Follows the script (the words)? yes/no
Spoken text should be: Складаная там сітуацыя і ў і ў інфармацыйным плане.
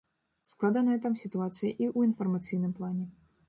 no